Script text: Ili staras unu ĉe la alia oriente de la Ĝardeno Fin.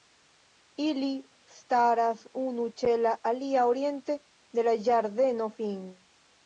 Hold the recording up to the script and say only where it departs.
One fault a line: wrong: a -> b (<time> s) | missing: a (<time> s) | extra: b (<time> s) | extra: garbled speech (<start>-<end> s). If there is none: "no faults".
no faults